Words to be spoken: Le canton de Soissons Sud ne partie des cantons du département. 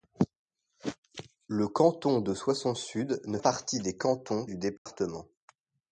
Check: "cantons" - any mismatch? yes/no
no